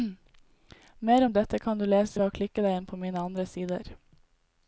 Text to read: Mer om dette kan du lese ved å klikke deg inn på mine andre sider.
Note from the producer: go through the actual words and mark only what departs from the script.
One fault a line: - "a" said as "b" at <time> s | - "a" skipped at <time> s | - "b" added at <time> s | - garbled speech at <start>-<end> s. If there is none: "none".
none